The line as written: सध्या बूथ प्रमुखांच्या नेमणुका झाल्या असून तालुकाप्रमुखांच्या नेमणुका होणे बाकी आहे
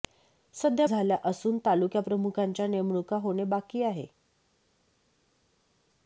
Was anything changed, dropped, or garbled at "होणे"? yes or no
no